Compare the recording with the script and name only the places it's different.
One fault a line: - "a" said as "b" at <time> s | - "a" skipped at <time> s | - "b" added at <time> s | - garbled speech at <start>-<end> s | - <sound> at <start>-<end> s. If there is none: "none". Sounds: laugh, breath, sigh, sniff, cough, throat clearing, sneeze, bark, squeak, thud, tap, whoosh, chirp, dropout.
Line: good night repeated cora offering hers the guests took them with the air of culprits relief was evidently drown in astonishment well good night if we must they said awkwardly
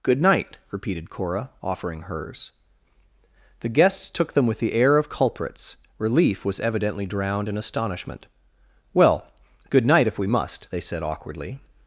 - "drown" said as "drowned" at 7.1 s